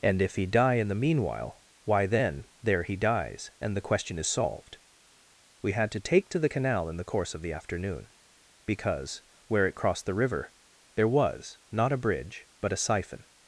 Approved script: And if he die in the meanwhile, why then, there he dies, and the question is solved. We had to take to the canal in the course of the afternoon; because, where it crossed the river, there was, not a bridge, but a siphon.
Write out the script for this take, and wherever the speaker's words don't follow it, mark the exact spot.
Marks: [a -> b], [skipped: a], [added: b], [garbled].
And if he die in the meanwhile, why then, there he dies, and the question is solved. We had to take to the canal in the course of the afternoon; because, where it crossed the river, there was, not a bridge, but a siphon.